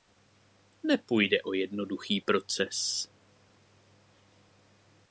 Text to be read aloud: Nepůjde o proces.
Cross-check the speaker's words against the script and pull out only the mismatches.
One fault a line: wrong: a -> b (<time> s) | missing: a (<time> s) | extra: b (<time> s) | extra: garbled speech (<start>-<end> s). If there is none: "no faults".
extra: jednoduchý (1.5 s)